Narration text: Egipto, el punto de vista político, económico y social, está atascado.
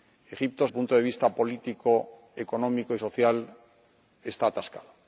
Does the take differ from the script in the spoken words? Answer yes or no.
no